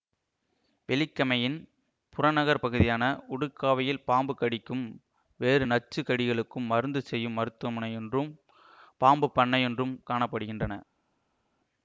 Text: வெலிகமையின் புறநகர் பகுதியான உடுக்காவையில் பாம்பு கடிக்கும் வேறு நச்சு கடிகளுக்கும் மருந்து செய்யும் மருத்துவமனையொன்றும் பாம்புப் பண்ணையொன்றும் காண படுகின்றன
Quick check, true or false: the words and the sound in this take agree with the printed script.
true